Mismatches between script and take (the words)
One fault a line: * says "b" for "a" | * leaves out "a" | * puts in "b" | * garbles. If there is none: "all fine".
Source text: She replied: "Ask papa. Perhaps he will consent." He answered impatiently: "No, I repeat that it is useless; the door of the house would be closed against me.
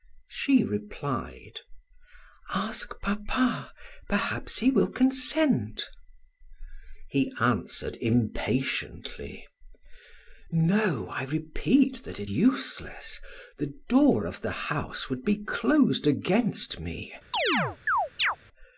* leaves out "is"